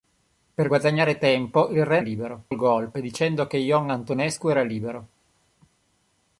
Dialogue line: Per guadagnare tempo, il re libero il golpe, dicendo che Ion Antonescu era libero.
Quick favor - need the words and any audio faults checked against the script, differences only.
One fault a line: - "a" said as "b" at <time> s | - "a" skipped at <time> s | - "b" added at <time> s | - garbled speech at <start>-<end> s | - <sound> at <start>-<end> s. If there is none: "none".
none